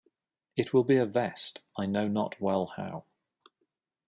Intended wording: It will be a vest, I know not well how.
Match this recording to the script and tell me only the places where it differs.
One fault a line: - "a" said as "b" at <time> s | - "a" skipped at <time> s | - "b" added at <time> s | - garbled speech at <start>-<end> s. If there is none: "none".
none